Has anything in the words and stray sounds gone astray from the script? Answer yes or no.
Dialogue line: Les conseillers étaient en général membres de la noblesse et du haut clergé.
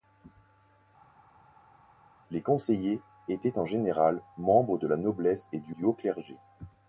yes